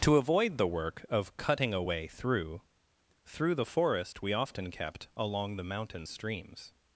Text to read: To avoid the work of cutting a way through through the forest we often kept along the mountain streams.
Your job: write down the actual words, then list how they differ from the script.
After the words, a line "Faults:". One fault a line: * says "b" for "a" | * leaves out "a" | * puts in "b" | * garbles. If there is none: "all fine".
To avoid the work of cutting a way through through the forest we often kept along the mountain streams.
Faults:
all fine